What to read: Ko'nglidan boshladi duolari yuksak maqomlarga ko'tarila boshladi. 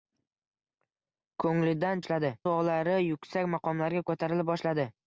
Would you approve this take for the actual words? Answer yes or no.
yes